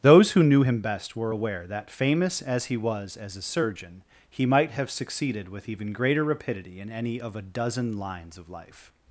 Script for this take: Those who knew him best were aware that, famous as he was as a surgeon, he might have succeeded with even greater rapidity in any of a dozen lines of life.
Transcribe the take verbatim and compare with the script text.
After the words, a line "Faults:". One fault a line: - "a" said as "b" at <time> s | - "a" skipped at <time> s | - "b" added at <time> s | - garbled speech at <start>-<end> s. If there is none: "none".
Those who knew him best were aware that, famous as he was as a surgeon, he might have succeeded with even greater rapidity in any of a dozen lines of life.
Faults:
none